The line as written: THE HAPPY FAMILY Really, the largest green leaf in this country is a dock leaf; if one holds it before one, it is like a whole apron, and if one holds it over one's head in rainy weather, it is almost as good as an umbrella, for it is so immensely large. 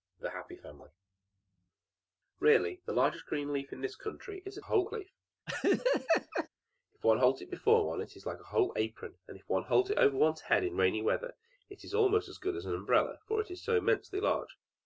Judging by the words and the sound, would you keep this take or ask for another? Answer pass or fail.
fail